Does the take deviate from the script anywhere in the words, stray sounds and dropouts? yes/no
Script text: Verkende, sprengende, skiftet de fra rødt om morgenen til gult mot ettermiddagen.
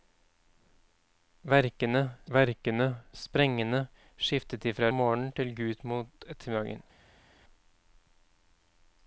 yes